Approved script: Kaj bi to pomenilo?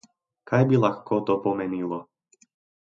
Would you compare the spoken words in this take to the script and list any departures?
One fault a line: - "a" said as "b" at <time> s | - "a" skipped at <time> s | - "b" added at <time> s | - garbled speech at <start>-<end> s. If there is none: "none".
- "lahko" added at 0.8 s